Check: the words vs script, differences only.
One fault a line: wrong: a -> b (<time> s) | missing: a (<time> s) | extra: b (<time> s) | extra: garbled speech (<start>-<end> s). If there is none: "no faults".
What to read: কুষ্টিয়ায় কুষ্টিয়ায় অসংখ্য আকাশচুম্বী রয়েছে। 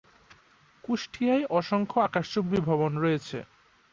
missing: কুষ্টিয়ায় (1.4 s)
extra: ভবন (2.7 s)